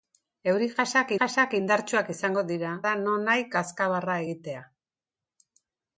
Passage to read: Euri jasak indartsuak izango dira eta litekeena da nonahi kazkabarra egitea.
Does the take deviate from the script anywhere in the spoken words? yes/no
yes